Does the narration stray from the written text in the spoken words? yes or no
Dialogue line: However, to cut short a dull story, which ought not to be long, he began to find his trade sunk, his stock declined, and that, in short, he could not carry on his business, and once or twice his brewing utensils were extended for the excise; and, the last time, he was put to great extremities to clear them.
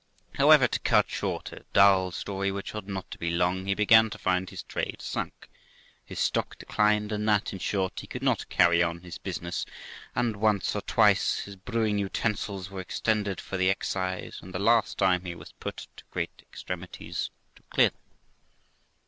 no